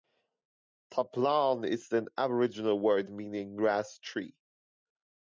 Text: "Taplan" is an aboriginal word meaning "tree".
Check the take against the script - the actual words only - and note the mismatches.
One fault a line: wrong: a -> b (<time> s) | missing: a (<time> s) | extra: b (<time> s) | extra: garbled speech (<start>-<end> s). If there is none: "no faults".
extra: grass (3.6 s)